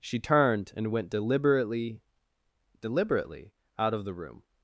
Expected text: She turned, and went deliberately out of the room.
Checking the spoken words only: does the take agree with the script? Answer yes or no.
no